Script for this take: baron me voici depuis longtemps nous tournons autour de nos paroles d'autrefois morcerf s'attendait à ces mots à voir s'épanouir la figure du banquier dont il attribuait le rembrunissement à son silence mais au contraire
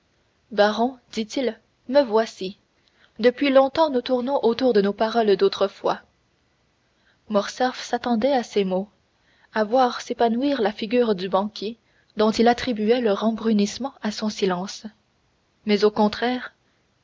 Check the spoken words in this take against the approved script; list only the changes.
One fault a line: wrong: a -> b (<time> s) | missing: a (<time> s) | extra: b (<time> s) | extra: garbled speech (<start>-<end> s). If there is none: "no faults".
extra: dit il (1.1 s)